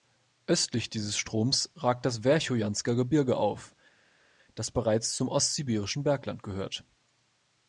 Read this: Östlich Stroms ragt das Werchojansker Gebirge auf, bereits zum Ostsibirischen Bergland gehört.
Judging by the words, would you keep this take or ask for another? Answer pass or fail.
fail